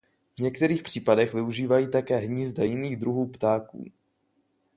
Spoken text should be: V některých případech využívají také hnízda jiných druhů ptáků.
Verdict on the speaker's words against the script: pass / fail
pass